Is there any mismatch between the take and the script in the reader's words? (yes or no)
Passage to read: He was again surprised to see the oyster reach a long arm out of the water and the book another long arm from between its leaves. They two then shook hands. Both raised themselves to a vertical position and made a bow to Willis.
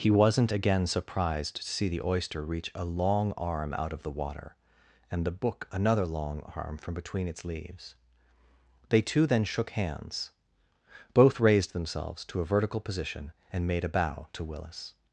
yes